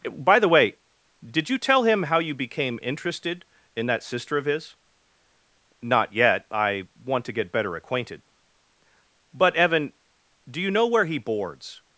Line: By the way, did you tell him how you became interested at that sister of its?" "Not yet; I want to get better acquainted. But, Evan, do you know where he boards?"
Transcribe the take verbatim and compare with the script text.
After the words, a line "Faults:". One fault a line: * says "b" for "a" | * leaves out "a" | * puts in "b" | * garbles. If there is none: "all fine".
By the way, did you tell him how you became interested in that sister of his?" "Not yet; I want to get better acquainted. But, Evan, do you know where he boards?"
Faults:
* says "in" for "at"
* says "his" for "its"